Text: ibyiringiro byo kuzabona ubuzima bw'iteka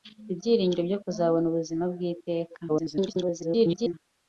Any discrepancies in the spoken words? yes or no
yes